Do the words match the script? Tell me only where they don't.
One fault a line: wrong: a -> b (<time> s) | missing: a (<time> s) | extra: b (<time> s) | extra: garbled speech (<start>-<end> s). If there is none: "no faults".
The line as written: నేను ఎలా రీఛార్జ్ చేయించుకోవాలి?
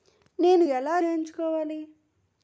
missing: రీఛార్జ్ (1.0 s)